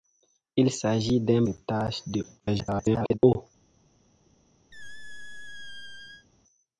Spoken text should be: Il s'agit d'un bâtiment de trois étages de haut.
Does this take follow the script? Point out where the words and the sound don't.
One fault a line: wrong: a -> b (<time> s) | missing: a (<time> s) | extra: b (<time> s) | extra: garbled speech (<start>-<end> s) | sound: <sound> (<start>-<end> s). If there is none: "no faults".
missing: bâtiment de trois (1.4 s)
extra: garbled speech (2.4-3.2 s)
sound: squeak (4.7-6.3 s)